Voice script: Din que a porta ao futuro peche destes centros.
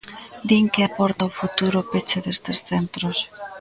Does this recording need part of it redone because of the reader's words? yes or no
no